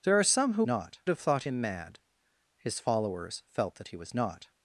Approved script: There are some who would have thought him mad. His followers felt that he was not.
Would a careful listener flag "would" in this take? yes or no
yes